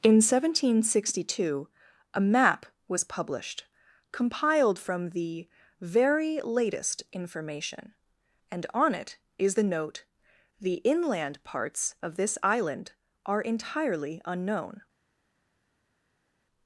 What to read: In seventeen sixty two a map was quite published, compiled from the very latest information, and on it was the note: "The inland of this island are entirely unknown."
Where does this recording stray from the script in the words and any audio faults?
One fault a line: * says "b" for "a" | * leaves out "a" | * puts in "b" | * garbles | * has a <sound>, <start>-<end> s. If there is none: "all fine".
* leaves out "quite"
* says "is" for "was"
* puts in "parts"